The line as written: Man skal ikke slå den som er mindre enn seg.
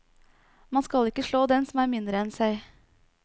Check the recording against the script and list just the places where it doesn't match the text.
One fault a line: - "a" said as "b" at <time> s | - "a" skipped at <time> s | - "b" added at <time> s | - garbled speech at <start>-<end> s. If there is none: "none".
none